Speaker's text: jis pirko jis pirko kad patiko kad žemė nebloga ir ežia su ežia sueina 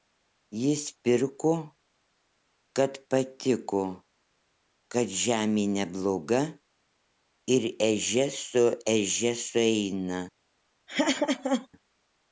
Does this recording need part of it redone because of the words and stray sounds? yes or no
yes